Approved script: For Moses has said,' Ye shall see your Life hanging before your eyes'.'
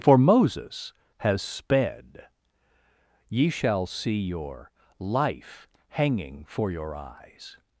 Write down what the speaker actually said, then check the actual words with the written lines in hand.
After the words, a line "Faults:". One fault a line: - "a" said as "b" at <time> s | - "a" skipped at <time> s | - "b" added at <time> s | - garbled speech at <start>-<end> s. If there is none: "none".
For Moses has sped,' Ye shall see your Life hanging for your eyes'.'
Faults:
- "said" said as "sped" at 1.4 s
- "before" said as "for" at 6.5 s